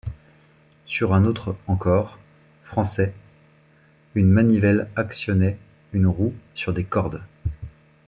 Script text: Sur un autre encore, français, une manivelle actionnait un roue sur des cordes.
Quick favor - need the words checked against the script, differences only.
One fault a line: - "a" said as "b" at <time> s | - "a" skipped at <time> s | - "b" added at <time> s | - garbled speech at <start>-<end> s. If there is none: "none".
- "un" said as "une" at 5.9 s